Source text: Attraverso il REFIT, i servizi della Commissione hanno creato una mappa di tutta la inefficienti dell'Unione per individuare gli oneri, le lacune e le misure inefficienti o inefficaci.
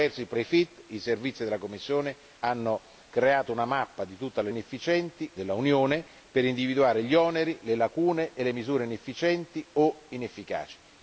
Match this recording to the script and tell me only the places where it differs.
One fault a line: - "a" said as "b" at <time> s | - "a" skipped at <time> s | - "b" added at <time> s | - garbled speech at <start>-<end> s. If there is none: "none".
none